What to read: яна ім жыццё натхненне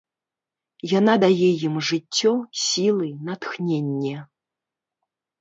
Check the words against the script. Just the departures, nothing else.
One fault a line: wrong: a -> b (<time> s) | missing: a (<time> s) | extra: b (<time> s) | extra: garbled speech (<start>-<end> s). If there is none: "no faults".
extra: дае (1.2 s)
extra: сілы (2.7 s)